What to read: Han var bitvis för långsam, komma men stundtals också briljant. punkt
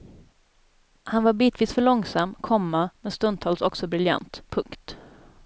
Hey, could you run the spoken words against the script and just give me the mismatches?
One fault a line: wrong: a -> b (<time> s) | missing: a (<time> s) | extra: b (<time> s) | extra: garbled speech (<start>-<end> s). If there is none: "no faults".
no faults